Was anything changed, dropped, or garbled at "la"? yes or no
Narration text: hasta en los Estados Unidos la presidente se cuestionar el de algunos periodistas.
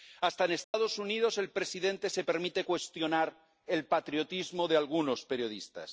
yes